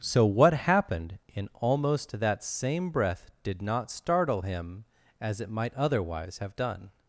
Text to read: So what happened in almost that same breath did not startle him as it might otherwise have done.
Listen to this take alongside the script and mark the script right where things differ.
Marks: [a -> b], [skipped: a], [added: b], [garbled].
So what happened in almost that same breath did not startle him as it might otherwise have done.